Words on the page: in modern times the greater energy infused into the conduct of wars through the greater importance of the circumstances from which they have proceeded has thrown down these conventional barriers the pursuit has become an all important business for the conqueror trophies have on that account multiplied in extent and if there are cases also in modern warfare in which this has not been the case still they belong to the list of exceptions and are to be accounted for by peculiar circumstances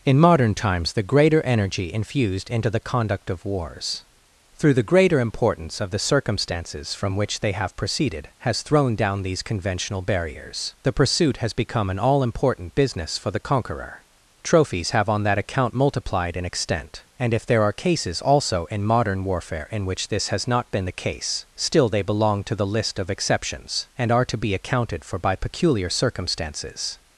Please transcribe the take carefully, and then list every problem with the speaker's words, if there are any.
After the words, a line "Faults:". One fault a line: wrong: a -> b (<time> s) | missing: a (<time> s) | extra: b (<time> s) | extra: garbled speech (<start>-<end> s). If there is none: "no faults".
in modern times the greater energy infused into the conduct of wars through the greater importance of the circumstances from which they have proceeded has thrown down these conventional barriers the pursuit has become an all important business for the conqueror trophies have on that account multiplied in extent and if there are cases also in modern warfare in which this has not been the case still they belong to the list of exceptions and are to be accounted for by peculiar circumstances
Faults:
no faults